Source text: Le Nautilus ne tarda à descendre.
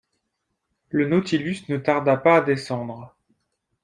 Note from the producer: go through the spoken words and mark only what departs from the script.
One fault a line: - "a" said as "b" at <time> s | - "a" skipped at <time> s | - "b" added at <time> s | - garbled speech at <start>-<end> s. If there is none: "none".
- "pas" added at 2.2 s